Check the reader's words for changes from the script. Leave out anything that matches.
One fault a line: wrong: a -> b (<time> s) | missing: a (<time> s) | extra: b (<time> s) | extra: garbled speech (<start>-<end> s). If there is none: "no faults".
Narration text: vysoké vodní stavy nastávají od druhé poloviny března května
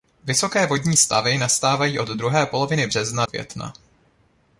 no faults